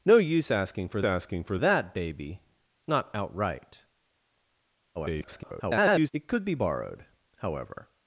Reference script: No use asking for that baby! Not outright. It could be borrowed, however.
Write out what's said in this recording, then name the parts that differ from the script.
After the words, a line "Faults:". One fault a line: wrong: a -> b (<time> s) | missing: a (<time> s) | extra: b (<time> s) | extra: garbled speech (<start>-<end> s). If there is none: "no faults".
No use asking for asking for that baby! Not outright. [garbled] It could be borrowed, however.
Faults:
extra: asking for (1.0 s)
extra: garbled speech (4.9-6.1 s)